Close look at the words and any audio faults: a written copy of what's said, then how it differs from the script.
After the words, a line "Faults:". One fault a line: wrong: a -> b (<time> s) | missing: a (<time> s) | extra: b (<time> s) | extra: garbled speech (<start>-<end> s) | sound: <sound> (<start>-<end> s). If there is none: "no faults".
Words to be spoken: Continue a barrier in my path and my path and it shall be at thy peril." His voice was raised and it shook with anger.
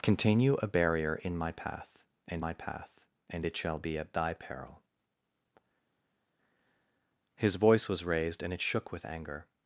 Continue a barrier in my path and my path and it shall be at thy peril." His voice was raised and it shook with anger.
Faults:
no faults